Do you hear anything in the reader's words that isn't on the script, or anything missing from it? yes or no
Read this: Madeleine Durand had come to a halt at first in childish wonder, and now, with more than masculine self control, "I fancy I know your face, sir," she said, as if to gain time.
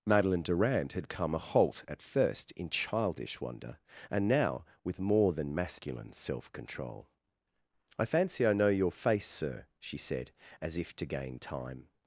yes